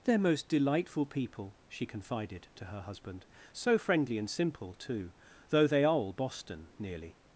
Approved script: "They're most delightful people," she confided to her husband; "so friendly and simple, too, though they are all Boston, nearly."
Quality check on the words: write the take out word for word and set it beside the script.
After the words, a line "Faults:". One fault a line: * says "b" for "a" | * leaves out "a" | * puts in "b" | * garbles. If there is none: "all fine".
"They're most delightful people," she confided to her husband; "so friendly and simple, too, though they are all Boston, nearly."
Faults:
all fine